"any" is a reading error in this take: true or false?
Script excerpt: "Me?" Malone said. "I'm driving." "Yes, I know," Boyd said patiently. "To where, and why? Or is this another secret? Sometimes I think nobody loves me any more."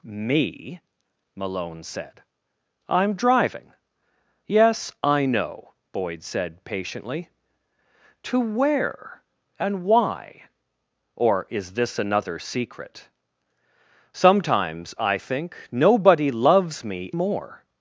true